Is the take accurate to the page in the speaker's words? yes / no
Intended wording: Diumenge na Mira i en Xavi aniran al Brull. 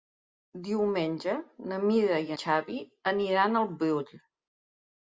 no